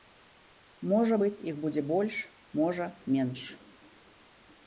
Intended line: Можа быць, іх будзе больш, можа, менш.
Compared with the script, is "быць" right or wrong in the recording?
right